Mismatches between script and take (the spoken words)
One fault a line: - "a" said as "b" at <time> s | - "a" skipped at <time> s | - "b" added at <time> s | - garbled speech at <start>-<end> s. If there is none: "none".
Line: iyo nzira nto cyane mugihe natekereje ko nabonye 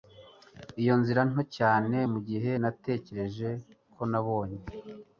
none